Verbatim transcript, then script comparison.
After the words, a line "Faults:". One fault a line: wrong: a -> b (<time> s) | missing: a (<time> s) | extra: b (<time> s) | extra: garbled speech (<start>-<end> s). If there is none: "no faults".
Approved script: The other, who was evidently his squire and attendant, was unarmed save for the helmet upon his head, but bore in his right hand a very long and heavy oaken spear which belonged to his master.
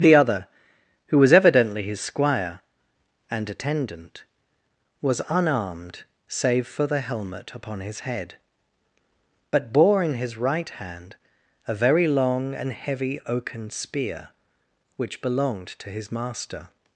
The other, who was evidently his squire and attendant, was unarmed save for the helmet upon his head, but bore in his right hand a very long and heavy oaken spear which belonged to his master.
Faults:
no faults